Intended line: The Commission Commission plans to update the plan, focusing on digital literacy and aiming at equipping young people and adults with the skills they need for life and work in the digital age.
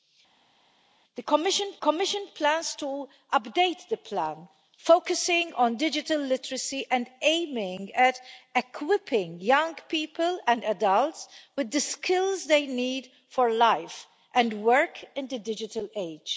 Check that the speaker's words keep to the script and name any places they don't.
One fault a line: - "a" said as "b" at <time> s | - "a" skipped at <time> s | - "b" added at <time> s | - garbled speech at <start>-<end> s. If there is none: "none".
none